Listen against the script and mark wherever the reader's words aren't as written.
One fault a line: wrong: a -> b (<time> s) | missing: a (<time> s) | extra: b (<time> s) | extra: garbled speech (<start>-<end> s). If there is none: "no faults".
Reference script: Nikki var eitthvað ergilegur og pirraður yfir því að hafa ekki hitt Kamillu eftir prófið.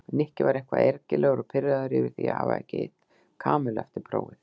no faults